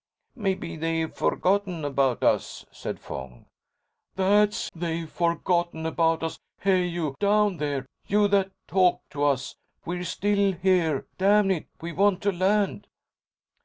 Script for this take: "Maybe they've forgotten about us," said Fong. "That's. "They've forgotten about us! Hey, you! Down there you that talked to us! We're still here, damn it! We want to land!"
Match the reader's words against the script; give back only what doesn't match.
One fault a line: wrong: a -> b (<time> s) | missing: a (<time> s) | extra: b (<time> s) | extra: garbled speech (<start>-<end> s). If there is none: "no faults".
no faults